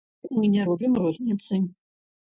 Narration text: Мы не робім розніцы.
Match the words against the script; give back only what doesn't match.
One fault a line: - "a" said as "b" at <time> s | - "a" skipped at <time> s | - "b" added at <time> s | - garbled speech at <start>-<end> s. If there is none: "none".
none